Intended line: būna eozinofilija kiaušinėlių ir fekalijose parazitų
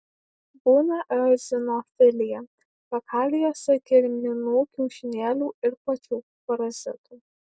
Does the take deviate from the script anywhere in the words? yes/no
yes